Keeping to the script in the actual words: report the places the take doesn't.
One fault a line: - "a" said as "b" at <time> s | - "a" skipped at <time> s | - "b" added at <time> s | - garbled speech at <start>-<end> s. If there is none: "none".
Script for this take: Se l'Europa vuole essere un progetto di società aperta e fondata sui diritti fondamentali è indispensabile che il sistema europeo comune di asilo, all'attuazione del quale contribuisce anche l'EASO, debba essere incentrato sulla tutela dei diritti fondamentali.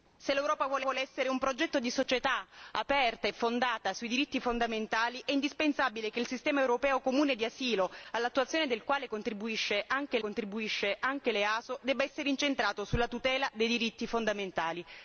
- "vuole" added at 0.8 s
- "contribuisce anche" added at 10.2 s